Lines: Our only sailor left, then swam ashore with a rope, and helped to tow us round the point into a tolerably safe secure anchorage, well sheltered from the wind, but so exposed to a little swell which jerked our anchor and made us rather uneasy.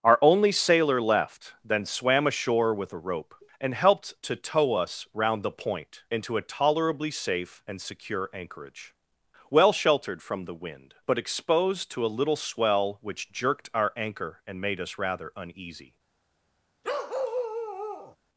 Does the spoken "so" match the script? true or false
false